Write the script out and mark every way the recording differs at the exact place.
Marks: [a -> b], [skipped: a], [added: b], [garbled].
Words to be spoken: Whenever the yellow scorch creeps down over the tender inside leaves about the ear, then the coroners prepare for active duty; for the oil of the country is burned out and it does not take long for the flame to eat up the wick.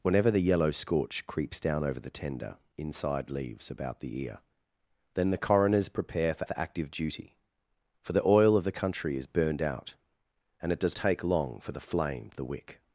Whenever the yellow scorch creeps down over the tender inside leaves about the ear, then the coroners prepare for [added: for] active duty; for the oil of the country is burned out and it does [skipped: not] take long for the flame [skipped: to eat up] the wick.